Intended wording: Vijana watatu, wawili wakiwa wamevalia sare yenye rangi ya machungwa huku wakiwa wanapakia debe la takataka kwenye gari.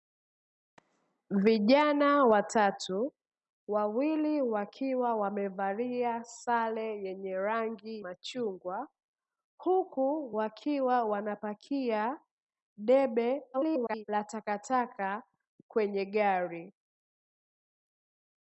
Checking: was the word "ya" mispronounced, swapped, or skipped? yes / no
yes